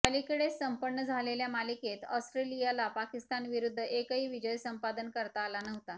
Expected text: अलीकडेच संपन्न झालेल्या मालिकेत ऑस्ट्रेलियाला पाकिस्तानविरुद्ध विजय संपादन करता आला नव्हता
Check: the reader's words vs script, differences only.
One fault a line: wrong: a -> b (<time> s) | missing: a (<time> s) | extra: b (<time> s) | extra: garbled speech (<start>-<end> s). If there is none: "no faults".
extra: एकही (3.8 s)